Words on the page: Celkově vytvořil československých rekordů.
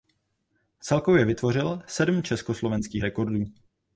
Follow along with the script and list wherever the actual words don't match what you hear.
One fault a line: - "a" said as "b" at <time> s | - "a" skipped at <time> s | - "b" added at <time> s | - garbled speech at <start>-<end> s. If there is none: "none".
- "sedm" added at 1.9 s